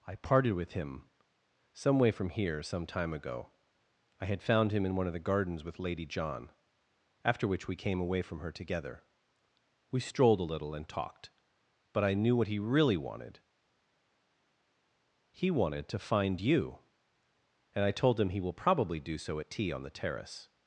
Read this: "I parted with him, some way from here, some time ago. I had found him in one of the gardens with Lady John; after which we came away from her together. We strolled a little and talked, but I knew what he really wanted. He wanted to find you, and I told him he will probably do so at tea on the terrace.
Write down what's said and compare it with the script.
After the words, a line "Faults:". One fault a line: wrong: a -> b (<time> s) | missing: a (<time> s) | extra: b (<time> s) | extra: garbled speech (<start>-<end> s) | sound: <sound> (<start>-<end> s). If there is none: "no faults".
"I parted with him, some way from here, some time ago. I had found him in one of the gardens with Lady John; after which we came away from her together. We strolled a little and talked, but I knew what he really wanted. He wanted to find you, and I told him he will probably do so at tea on the terrace.
Faults:
no faults